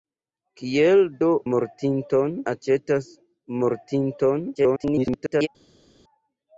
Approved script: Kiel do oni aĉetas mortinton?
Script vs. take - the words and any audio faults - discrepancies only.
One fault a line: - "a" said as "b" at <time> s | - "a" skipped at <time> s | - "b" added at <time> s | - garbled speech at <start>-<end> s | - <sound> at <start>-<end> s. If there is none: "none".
- "oni" said as "mortinton" at 1.5 s
- garbled speech at 4.5-5.5 s